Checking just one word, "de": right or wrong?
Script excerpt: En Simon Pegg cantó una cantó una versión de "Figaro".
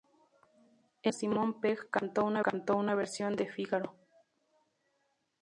right